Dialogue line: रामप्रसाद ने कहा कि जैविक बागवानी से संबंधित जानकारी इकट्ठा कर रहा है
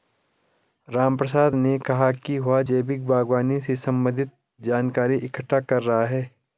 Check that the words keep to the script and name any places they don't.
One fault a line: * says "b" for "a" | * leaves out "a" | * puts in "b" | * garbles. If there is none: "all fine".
* puts in "वह"